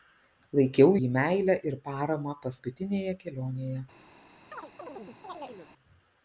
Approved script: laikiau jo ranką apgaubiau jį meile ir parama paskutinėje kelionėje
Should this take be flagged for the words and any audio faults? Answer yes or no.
yes